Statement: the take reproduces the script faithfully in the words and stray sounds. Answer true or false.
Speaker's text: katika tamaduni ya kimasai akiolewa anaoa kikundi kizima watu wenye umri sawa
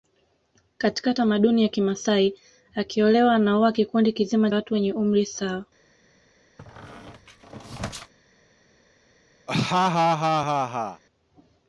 false